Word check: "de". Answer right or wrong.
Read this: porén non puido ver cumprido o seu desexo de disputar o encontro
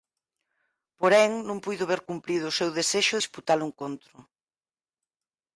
wrong